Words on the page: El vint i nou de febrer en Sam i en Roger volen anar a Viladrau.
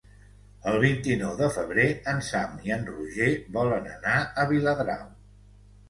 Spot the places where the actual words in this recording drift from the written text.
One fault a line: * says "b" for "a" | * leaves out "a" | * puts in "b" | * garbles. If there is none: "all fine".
all fine